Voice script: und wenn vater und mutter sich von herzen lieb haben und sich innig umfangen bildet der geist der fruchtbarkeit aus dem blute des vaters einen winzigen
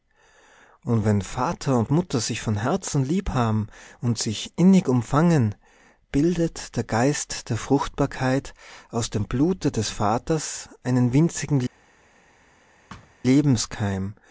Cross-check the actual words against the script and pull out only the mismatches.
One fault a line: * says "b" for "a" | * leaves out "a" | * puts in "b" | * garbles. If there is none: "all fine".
all fine